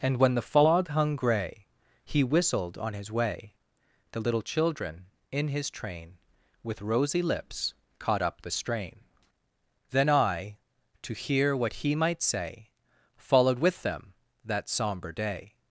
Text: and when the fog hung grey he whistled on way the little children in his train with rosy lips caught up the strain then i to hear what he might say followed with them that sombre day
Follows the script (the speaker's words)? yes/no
no